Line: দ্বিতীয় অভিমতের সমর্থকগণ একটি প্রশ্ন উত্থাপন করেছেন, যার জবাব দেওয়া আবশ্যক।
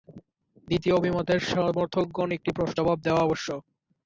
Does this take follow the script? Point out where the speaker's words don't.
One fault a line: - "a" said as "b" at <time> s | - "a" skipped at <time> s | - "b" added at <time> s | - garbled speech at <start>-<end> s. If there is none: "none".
- "উত্থাপন করেছেন যার" skipped at 2.8 s